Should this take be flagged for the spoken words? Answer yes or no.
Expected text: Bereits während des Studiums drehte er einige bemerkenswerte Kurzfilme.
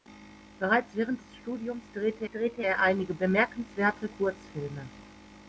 yes